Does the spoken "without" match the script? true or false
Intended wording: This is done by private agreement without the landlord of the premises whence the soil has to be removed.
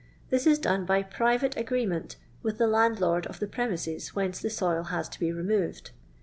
false